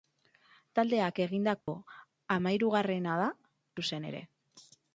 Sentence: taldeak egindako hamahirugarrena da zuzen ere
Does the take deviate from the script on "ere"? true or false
false